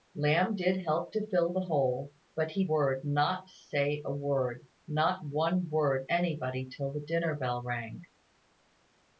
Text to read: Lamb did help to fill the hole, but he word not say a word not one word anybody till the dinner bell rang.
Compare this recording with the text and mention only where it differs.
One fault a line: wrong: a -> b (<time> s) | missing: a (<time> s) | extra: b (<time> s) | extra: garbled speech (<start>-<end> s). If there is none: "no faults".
no faults